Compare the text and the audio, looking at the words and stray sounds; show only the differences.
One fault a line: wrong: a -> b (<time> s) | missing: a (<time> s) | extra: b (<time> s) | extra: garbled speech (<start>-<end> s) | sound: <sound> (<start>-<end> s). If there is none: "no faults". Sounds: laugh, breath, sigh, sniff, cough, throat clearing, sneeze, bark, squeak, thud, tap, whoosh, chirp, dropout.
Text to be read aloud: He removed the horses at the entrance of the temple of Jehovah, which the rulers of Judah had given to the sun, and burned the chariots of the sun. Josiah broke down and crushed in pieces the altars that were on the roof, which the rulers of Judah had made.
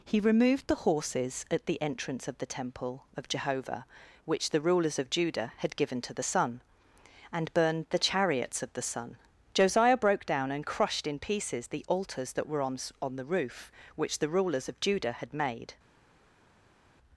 extra: on (13.0 s)